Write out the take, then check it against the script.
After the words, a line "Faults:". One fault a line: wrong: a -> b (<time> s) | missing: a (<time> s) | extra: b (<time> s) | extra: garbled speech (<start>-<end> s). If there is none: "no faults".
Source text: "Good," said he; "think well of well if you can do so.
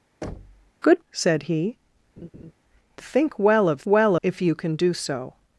"Good," said he; "think well of well if you can do so.
Faults:
no faults